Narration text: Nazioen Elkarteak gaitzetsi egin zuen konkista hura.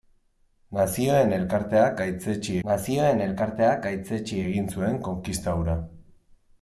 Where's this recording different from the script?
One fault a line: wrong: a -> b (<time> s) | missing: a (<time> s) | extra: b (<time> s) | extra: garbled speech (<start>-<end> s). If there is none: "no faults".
extra: nazioen Elkarteak gaitzetsi (2.7 s)